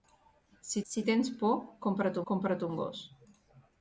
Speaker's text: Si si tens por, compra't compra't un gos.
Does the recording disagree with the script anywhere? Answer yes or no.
no